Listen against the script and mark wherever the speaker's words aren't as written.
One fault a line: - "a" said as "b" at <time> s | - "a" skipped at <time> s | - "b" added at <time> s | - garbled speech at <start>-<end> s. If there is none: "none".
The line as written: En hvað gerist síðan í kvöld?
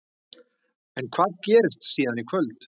none